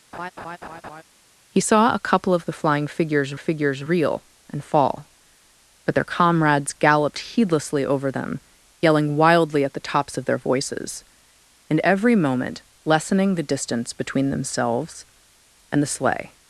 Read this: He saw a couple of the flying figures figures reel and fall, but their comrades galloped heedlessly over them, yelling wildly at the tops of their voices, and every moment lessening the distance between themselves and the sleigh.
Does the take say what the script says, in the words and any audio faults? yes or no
no